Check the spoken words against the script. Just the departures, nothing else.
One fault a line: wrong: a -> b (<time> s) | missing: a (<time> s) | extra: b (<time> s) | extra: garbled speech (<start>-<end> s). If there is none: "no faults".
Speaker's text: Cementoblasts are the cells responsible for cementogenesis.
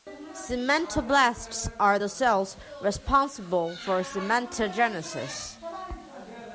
no faults